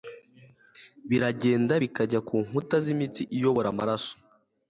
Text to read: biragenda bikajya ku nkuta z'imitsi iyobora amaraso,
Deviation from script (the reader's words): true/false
false